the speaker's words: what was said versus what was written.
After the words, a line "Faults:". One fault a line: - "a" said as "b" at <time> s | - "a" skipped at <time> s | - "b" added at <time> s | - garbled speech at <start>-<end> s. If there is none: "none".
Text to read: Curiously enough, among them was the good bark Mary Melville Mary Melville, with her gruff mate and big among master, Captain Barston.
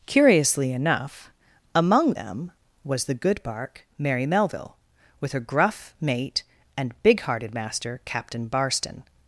Curiously enough, among them was the good bark Mary Melville, with her gruff mate and big hearted master, Captain Barston.
Faults:
- "Mary Melville" skipped at 4.8 s
- "among" said as "hearted" at 7.2 s